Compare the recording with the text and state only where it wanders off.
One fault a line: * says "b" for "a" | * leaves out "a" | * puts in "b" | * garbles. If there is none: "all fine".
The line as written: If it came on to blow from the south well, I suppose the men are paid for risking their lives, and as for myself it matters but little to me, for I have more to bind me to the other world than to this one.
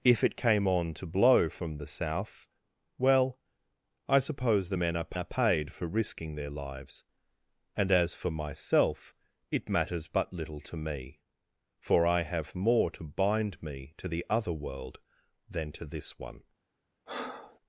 * puts in "are"